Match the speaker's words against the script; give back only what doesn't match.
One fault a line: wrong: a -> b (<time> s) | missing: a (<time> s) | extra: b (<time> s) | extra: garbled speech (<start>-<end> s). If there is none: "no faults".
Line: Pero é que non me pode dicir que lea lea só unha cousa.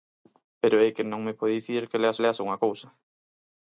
no faults